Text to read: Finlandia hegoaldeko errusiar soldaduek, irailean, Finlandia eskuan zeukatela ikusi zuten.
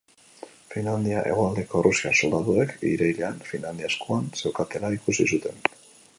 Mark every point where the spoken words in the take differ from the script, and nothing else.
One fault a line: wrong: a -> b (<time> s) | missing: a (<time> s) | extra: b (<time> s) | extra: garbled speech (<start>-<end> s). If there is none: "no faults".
no faults